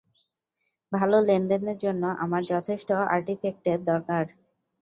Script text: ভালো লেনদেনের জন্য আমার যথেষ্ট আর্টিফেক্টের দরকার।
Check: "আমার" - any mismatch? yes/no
no